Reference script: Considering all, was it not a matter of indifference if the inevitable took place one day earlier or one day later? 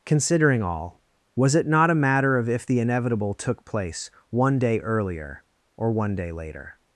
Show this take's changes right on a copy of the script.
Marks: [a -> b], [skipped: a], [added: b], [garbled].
Considering all, was it not a matter of [skipped: indifference] if the inevitable took place one day earlier or one day later?